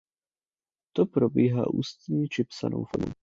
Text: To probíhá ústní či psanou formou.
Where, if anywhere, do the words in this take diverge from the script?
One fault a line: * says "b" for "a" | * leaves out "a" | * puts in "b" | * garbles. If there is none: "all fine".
all fine